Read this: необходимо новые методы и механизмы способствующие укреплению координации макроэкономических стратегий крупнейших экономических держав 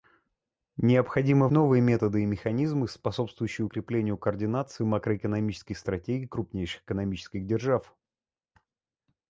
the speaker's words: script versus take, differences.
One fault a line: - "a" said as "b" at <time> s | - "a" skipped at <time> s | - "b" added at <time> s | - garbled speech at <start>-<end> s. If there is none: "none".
none